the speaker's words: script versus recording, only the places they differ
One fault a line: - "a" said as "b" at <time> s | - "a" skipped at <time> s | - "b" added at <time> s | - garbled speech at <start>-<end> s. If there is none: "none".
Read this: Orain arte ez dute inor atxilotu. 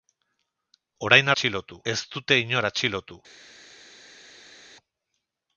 - "arte" said as "atxilotu" at 1.3 s